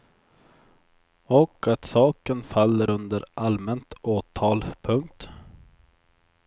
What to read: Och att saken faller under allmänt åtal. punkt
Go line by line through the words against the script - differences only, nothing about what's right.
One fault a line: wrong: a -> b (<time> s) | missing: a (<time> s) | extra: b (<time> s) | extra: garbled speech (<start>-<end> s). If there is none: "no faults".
no faults